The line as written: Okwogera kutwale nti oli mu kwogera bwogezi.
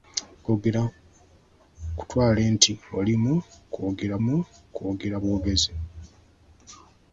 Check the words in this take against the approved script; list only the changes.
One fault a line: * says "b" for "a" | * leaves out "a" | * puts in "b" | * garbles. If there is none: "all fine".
* puts in "mu kwogera"